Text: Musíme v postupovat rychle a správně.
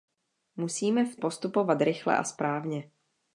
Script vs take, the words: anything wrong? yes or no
no